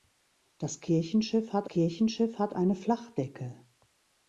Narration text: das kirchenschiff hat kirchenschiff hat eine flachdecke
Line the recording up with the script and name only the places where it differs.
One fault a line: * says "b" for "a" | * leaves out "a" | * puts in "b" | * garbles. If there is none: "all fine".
all fine